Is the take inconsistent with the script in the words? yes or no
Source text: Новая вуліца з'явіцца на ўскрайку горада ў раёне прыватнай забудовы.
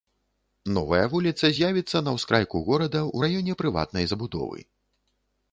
no